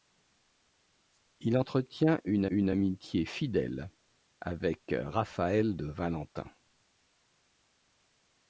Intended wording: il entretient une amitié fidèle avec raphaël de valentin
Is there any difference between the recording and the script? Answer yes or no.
yes